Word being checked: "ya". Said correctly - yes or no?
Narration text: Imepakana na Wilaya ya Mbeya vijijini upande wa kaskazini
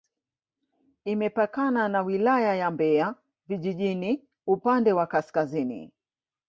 yes